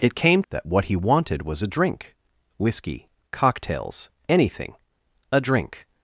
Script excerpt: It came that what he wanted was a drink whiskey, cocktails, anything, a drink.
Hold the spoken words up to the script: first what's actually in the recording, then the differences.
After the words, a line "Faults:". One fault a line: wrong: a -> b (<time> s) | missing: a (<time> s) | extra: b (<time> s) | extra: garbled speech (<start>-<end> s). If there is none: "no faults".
It came that what he wanted was a drink whiskey, cocktails, anything, a drink.
Faults:
no faults